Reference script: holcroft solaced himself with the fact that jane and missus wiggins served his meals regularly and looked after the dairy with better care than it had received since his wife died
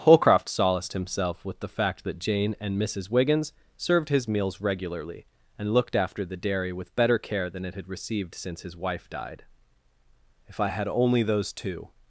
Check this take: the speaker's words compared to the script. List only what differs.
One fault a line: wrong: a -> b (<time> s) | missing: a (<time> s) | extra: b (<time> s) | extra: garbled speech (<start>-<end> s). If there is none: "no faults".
extra: if i had only those two (10.5 s)